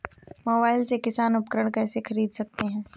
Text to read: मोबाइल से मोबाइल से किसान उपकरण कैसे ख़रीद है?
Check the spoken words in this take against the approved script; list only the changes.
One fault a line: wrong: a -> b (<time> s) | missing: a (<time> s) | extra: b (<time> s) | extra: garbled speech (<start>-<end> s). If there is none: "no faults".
missing: मोबाइल से (1.0 s)
extra: सकते (2.3 s)